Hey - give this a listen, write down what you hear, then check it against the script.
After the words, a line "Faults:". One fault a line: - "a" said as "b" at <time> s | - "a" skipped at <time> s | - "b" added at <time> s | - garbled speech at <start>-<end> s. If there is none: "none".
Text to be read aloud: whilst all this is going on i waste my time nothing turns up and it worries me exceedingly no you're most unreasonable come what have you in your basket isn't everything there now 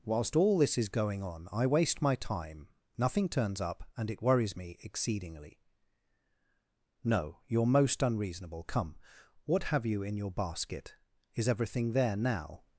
whilst all this is going on i waste my time nothing turns up and it worries me exceedingly no you're most unreasonable come what have you in your basket is everything there now
Faults:
- "isn't" said as "is" at 11.3 s